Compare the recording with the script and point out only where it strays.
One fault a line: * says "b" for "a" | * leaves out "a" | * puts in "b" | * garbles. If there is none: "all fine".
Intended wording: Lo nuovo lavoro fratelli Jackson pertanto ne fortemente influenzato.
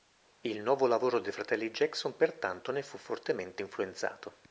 * says "Il" for "Lo"
* puts in "dei"
* puts in "fu"